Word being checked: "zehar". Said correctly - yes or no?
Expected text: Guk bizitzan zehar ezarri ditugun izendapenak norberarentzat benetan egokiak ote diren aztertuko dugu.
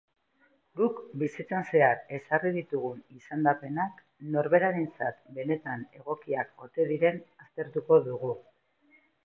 yes